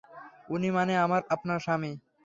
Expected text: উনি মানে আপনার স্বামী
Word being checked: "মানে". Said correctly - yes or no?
yes